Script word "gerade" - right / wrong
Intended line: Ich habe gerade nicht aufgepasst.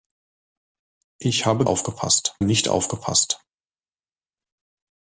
wrong